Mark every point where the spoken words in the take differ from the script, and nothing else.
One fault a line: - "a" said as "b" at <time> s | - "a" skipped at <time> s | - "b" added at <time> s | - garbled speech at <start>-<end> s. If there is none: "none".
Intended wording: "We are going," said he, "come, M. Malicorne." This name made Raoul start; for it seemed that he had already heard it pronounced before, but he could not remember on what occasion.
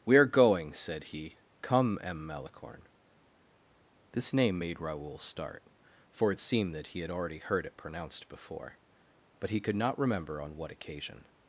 none